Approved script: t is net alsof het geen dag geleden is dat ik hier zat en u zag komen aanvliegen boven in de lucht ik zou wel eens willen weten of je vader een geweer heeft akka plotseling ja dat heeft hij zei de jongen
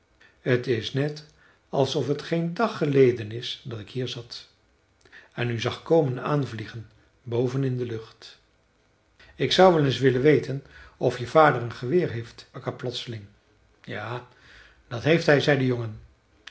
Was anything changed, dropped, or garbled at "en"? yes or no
no